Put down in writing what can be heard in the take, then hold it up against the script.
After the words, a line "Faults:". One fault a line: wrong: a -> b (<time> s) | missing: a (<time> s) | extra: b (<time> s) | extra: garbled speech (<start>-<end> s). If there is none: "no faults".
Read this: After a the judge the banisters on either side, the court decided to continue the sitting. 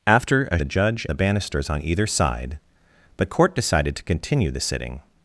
After a the judge the banisters on either side, the court decided to continue the sitting.
Faults:
no faults